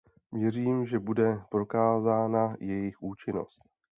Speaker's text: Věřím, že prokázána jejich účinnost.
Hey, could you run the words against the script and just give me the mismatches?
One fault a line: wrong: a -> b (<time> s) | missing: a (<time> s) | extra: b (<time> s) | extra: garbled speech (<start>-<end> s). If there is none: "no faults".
extra: bude (1.0 s)